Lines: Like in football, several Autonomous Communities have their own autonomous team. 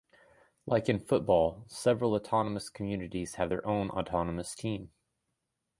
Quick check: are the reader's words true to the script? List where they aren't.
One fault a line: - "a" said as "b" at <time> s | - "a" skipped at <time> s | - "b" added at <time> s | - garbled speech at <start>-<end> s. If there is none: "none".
none